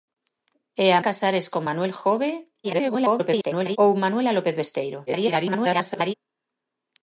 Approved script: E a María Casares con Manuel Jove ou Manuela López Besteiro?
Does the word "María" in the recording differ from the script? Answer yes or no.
yes